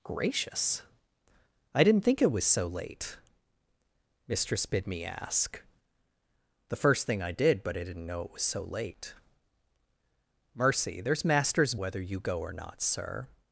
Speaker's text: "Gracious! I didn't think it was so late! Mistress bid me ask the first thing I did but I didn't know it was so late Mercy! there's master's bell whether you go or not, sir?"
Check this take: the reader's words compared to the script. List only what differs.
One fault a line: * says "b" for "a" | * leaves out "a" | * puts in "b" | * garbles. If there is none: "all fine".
* leaves out "bell"